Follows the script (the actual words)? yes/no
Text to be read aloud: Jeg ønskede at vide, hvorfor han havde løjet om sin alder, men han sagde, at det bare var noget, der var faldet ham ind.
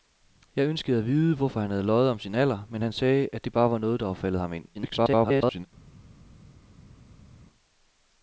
no